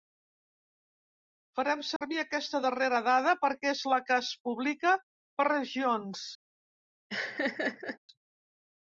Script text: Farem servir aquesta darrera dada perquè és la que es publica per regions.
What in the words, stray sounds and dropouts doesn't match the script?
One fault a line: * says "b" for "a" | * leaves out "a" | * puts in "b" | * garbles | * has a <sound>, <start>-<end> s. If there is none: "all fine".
* has a dropout, 2.0-2.0 s
* has a laugh, 7.1-8.0 s